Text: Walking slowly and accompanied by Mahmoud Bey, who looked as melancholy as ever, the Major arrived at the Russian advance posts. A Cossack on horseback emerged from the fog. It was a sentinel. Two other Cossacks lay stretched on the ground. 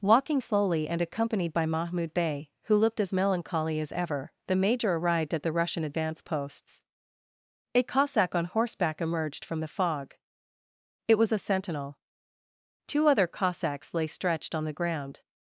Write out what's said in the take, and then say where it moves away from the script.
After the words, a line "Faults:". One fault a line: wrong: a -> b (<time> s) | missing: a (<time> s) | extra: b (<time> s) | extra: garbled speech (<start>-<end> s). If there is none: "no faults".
Walking slowly and accompanied by Mahmoud Bey, who looked as melancholy as ever, the Major arrived at the Russian advance posts. A Cossack on horseback emerged from the fog. It was a sentinel. Two other Cossacks lay stretched on the ground.
Faults:
no faults